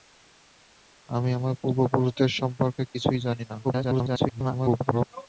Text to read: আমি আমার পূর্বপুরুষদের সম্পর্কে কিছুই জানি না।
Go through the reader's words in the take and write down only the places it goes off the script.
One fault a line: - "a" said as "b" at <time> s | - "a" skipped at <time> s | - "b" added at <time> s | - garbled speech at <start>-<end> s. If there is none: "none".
- garbled speech at 3.6-5.1 s